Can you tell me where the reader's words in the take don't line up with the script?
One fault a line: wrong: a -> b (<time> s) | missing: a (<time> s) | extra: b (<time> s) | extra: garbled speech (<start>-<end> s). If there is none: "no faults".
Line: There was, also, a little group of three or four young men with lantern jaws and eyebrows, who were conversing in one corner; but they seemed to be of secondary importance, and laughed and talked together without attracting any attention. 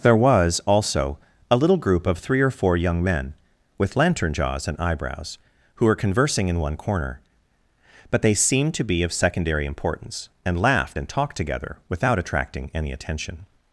no faults